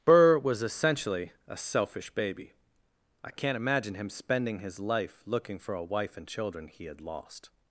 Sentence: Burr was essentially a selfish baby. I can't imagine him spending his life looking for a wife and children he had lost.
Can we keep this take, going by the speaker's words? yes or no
yes